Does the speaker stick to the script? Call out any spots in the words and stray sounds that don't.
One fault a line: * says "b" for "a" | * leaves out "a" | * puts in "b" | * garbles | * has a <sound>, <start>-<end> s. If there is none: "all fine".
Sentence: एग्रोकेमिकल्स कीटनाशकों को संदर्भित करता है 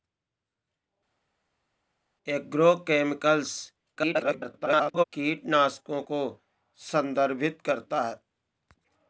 * garbles